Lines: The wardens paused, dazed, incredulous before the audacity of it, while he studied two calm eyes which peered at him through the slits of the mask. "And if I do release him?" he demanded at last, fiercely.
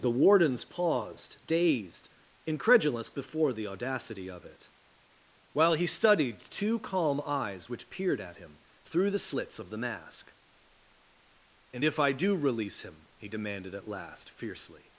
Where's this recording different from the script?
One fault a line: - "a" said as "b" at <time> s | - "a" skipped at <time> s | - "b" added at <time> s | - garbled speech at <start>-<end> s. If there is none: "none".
none